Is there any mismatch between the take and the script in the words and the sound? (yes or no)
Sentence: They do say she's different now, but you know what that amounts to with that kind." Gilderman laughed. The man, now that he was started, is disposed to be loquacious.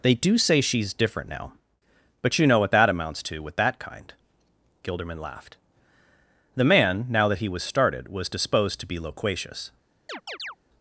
yes